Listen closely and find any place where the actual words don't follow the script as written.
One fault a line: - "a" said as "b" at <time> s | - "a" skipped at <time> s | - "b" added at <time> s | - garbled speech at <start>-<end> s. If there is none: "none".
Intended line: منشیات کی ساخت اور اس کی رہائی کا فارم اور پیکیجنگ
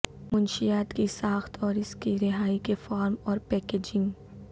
- "کا" said as "کے" at 2.6 s